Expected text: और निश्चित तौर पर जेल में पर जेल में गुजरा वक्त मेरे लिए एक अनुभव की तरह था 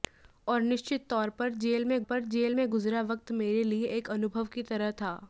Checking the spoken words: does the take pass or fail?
pass